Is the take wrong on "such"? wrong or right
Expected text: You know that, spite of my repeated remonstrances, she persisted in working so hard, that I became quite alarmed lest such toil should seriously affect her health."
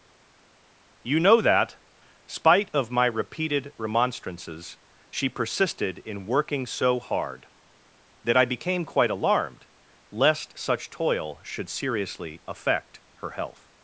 right